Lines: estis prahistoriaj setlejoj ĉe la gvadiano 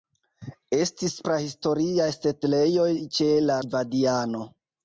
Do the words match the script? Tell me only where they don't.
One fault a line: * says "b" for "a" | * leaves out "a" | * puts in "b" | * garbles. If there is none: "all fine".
all fine